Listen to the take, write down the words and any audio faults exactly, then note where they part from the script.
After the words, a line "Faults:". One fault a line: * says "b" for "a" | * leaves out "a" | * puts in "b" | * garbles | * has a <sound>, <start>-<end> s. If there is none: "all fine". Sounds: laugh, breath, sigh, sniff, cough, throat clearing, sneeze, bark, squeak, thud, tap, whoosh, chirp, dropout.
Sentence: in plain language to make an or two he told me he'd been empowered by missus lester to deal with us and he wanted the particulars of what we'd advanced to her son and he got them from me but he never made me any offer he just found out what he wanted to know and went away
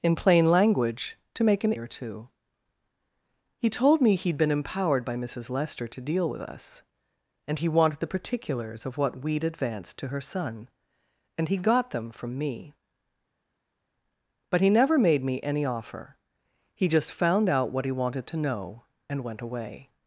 in plain language to make an or two he told me he'd been empowered by missus lester to deal with us and he wanted the particulars of what we'd advanced to her son and he got them from me but he never made me any offer he just found out what he wanted to know and went away
Faults:
all fine